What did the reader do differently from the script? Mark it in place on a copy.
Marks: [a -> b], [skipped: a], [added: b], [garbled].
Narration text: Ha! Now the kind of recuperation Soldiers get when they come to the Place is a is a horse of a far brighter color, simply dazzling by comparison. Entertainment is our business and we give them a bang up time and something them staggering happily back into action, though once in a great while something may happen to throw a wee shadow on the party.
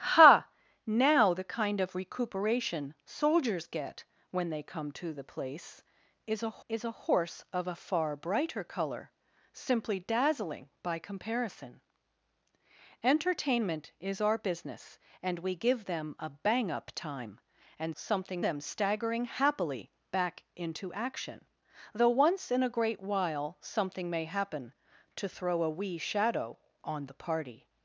Ha! Now the kind of recuperation Soldiers get when they come to the Place is a is a horse of a far brighter color, simply dazzling by comparison. Entertainment is our business and we give them a bang up time and something them staggering happily back into action, though once in a great while something may happen to throw a wee shadow on the party.